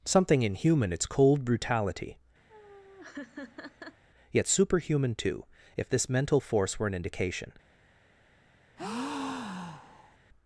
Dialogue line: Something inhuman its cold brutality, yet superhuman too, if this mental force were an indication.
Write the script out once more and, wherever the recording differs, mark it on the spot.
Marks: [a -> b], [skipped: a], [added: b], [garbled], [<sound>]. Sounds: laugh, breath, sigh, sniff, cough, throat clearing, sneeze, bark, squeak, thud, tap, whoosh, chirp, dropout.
Something inhuman its cold brutality, [laugh] yet superhuman too, if this mental force were an indication. [breath]